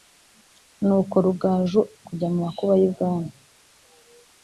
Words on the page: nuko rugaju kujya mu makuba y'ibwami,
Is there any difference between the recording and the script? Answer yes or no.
no